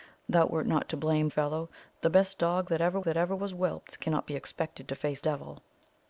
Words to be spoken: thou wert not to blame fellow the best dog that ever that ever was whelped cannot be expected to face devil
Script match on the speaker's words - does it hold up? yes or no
yes